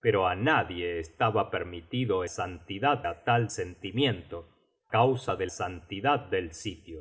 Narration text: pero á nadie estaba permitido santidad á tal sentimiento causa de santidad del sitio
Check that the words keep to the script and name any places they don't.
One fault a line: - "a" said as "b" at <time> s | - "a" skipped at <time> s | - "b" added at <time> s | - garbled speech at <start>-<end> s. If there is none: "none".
none